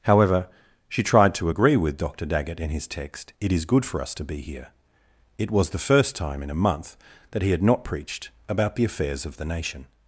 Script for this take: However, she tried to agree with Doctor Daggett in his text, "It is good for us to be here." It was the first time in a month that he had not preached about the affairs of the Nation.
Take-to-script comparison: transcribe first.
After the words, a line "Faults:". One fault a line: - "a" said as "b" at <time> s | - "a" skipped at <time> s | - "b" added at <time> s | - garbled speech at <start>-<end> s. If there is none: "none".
However, she tried to agree with Doctor Daggett in his text, "It is good for us to be here." It was the first time in a month that he had not preached about the affairs of the Nation.
Faults:
none